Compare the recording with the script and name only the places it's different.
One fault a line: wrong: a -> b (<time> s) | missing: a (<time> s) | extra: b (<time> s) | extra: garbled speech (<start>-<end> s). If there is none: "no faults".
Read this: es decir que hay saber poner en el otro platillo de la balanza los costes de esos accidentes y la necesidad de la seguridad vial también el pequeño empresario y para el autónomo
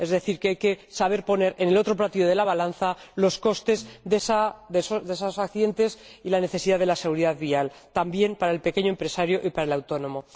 extra: que (0.6 s)
extra: para (8.4 s)